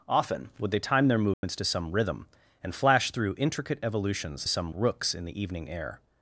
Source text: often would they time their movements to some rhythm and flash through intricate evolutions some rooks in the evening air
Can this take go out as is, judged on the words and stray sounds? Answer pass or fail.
fail